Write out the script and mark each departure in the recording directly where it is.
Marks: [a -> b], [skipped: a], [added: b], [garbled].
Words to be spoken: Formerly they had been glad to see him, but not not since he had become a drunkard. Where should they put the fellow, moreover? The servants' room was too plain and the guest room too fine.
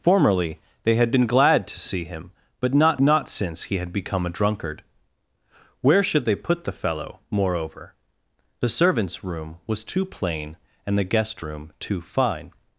Formerly they had been glad to see him, but not not since he had become a drunkard. Where should they put the fellow, moreover? The servants' room was too plain and the guest room too fine.